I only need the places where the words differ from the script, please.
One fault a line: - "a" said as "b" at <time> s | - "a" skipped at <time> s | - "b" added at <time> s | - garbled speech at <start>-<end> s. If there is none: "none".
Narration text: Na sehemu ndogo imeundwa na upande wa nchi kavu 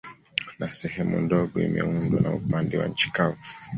none